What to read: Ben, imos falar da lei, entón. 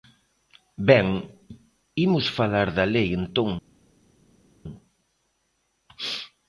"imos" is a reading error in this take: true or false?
false